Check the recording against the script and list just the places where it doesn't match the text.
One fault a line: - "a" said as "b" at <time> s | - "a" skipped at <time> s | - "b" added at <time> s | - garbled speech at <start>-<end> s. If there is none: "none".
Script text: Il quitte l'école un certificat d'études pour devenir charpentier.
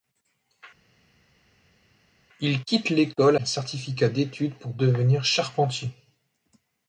none